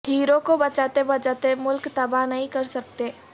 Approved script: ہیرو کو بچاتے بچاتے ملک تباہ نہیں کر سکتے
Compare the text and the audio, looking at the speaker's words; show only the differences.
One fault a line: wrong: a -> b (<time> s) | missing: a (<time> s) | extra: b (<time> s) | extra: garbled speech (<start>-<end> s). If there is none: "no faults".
no faults